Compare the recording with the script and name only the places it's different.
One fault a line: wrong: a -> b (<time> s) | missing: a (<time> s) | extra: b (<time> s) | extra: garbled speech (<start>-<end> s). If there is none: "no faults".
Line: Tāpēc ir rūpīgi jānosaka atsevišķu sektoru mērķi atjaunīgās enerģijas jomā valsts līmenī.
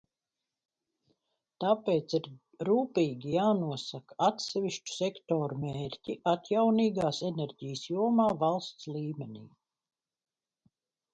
no faults